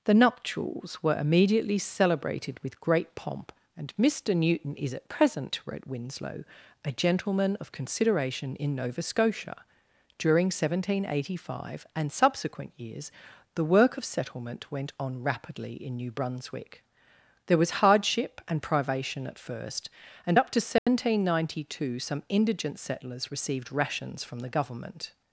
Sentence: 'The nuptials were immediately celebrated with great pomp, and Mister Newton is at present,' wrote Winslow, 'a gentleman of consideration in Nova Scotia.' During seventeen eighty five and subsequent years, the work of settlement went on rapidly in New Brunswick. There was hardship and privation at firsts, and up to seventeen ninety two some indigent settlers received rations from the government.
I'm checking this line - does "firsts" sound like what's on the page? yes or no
no